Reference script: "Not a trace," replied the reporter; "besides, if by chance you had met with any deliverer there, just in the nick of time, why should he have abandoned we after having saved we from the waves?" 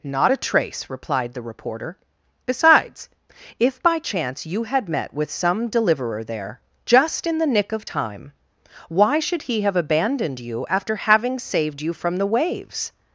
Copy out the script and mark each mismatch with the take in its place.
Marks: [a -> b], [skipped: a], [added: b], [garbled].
"Not a trace," replied the reporter; "besides, if by chance you had met with [any -> some] deliverer there, just in the nick of time, why should he have abandoned [we -> you] after having saved [we -> you] from the waves?"